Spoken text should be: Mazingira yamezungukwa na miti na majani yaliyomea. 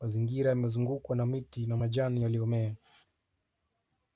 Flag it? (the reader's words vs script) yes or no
no